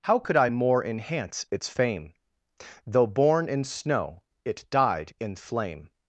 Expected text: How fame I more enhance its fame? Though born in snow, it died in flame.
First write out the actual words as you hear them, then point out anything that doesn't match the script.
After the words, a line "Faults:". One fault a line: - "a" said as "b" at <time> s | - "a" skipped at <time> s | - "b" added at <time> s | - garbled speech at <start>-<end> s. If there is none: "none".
How could I more enhance its fame? Though born in snow, it died in flame.
Faults:
- "fame" said as "could" at 0.2 s